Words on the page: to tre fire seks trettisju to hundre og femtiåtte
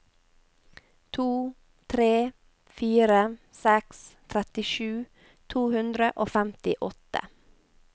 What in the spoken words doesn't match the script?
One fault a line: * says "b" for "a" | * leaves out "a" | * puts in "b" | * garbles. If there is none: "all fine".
all fine